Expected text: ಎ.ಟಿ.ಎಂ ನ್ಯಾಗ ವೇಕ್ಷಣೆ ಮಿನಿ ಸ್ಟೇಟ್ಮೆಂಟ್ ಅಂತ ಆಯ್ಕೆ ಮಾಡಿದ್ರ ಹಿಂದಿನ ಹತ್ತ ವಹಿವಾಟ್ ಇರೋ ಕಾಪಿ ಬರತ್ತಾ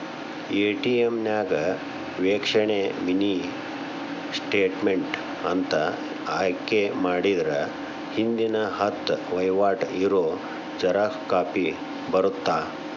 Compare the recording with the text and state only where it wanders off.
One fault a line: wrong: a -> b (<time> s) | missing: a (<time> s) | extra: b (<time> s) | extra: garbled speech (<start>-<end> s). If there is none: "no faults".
extra: ಜೆರಾಕ್ಸ್ (10.8 s)